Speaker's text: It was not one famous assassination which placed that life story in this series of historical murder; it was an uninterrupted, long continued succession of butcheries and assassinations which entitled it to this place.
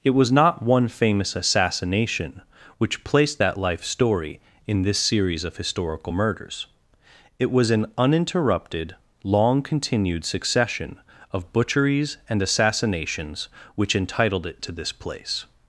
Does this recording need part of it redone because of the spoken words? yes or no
yes